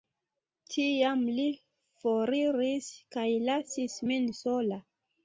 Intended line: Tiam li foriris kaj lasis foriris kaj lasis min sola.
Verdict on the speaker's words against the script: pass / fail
fail